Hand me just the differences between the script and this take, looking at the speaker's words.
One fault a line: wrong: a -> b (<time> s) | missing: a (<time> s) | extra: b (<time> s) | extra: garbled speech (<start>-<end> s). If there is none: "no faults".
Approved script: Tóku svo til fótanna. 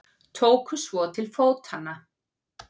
no faults